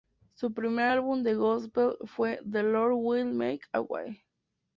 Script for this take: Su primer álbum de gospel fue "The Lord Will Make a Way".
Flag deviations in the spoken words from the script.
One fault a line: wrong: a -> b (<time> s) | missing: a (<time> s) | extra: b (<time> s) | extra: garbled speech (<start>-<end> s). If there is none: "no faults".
no faults